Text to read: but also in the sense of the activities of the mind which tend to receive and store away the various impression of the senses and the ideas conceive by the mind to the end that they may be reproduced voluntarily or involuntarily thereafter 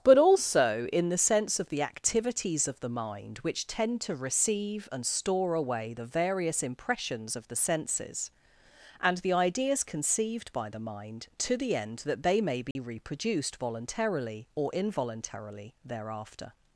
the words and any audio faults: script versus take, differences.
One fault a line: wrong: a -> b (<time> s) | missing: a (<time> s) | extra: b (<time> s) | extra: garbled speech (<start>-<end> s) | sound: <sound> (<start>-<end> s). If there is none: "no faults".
wrong: impression -> impressions (6.6 s)
wrong: conceive -> conceived (9.8 s)
sound: dropout (12.7-12.8 s)